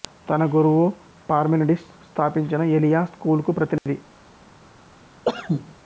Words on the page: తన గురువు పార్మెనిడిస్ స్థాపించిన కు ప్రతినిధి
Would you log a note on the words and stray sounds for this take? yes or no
yes